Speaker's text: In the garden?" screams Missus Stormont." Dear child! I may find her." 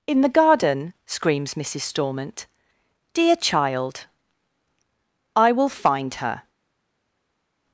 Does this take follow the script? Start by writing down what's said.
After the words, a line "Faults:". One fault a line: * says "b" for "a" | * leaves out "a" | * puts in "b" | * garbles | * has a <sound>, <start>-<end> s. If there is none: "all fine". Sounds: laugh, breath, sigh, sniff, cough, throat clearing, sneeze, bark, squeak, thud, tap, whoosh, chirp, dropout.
In the garden?" screams Missus Stormont." Dear child! I will find her."
Faults:
* says "will" for "may"